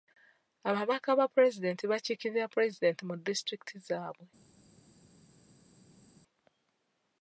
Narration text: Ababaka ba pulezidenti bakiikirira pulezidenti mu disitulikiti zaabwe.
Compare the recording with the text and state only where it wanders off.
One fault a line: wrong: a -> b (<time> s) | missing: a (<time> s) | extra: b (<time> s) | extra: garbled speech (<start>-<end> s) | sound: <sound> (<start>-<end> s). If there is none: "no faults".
no faults